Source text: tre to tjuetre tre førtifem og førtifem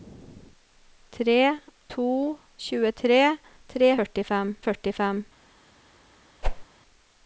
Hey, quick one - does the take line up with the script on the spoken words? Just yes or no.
yes